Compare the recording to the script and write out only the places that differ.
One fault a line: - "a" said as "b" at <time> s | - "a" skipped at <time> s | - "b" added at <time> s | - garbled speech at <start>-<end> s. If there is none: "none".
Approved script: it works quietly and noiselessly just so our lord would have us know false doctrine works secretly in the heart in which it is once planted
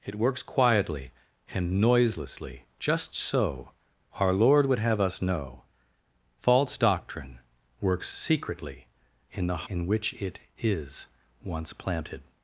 - "heart" skipped at 9.7 s